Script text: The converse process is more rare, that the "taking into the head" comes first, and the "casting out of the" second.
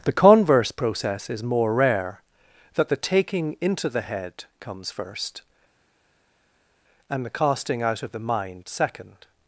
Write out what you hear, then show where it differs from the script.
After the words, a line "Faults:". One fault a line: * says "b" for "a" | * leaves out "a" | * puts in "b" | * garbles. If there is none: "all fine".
The converse process is more rare, that the "taking into the head" comes first, and the "casting out of the mind" second.
Faults:
* puts in "mind"